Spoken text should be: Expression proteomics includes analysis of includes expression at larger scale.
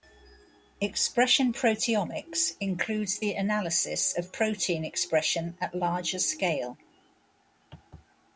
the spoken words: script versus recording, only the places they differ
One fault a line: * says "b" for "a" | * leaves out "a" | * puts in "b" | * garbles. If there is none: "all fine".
* puts in "the"
* says "protein" for "includes"